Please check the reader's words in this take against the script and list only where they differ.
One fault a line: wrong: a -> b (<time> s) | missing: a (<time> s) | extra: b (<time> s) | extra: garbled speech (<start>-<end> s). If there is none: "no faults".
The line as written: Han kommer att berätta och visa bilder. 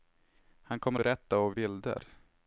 missing: att (1.0 s)
missing: visa (1.6 s)